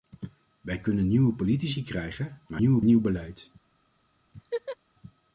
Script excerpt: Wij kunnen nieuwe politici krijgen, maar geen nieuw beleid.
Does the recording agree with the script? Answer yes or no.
no